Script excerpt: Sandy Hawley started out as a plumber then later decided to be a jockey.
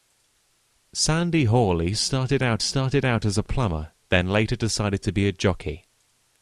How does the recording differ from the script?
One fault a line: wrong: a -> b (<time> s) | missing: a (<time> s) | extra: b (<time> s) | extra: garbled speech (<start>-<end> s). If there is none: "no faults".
extra: started out (2.6 s)